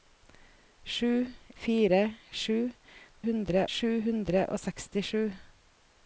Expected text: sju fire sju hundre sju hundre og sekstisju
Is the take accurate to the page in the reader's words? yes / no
yes